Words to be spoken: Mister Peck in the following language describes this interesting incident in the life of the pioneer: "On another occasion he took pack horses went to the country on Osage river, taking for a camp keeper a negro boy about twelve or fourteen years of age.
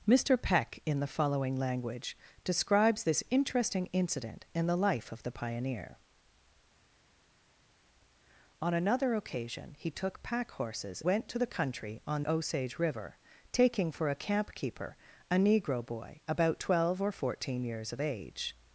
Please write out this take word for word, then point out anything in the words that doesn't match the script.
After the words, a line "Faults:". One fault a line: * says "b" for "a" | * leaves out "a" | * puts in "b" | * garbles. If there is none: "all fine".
Mister Peck in the following language describes this interesting incident in the life of the pioneer: "On another occasion he took pack horses went to the country on Osage river, taking for a camp keeper a negro boy about twelve or fourteen years of age.
Faults:
all fine